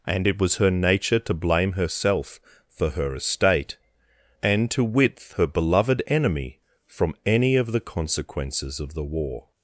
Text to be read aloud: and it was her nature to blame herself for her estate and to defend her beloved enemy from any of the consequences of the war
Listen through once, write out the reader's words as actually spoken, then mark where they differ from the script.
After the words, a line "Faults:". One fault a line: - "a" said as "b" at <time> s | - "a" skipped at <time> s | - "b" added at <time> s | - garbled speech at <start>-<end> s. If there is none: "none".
and it was her nature to blame herself for her estate and to width her beloved enemy from any of the consequences of the war
Faults:
- "defend" said as "width" at 4.8 s